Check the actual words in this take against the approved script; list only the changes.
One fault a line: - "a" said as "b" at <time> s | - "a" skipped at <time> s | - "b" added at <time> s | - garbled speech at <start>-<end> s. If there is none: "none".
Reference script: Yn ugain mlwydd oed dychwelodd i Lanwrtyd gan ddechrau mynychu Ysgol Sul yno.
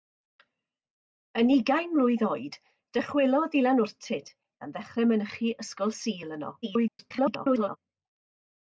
- garbled speech at 6.6-7.8 s